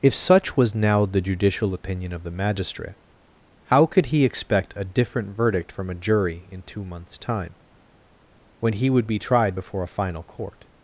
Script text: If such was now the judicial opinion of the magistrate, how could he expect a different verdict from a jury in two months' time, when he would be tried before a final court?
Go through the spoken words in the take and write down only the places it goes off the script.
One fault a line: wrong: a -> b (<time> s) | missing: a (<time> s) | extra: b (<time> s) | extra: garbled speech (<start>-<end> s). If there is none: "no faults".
no faults